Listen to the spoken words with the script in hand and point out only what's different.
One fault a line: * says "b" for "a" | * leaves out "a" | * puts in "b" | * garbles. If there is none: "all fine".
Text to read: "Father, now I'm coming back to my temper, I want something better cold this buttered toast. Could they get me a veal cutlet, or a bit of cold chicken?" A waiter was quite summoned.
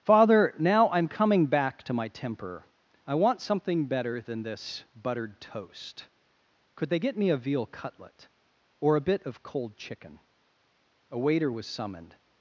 * says "than" for "cold"
* leaves out "quite"